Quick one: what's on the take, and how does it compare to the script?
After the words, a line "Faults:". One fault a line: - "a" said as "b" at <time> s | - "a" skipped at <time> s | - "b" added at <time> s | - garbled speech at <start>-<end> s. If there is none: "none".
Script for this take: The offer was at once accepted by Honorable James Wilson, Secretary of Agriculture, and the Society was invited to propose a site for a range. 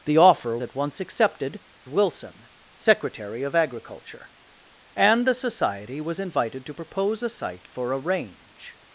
The offer at once accepted Wilson, Secretary of Agriculture, and the Society was invited to propose a site for a range.
Faults:
- "was" skipped at 0.6 s
- "by Honorable James" skipped at 1.6 s